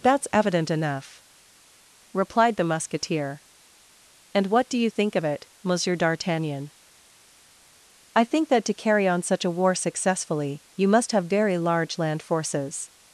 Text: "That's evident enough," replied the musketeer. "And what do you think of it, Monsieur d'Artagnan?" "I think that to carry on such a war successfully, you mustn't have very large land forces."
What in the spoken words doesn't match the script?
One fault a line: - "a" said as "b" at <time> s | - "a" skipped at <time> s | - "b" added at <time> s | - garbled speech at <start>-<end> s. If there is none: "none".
- "mustn't" said as "must" at 10.9 s